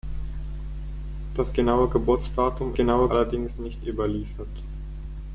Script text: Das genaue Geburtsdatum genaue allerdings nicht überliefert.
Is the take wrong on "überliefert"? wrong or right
right